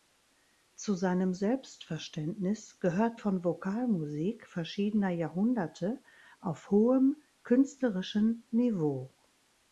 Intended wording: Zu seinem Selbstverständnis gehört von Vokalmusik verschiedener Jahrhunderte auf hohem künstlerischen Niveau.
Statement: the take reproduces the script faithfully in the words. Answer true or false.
true